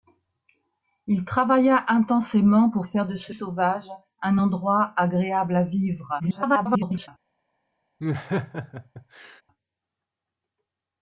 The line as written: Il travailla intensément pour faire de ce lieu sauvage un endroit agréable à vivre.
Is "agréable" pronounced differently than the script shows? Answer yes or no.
no